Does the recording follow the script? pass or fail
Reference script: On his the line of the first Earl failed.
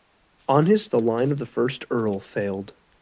pass